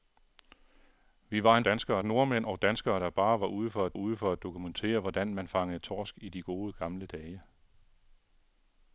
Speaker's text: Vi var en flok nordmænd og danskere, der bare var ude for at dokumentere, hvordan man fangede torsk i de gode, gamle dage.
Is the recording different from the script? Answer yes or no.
yes